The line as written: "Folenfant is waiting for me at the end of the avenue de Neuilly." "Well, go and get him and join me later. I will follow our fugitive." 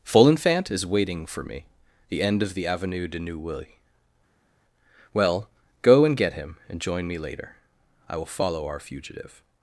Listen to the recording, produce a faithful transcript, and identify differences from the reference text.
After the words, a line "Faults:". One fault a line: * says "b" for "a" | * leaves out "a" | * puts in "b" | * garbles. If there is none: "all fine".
"Folenfant is waiting for me the end of the avenue de Neuilly." "Well, go and get him and join me later. I will follow our fugitive."
Faults:
* leaves out "at"